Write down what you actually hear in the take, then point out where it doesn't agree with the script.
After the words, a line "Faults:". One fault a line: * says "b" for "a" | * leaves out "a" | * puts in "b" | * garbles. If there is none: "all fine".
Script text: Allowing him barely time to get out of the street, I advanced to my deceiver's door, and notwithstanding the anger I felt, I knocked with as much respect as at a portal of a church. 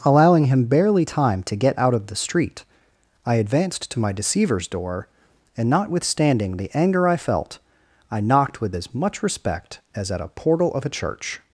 Allowing him barely time to get out of the street, I advanced to my deceiver's door, and notwithstanding the anger I felt, I knocked with as much respect as at a portal of a church.
Faults:
all fine